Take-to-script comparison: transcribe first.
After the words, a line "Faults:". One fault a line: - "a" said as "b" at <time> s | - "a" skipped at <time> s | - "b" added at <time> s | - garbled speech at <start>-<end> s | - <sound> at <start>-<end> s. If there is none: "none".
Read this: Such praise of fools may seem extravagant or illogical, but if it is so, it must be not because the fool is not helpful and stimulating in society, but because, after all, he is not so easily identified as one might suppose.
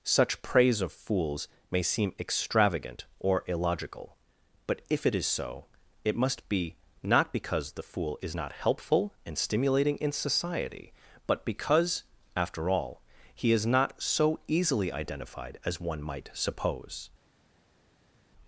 Such praise of fools may seem extravagant or illogical, but if it is so, it must be not because the fool is not helpful and stimulating in society, but because, after all, he is not so easily identified as one might suppose.
Faults:
none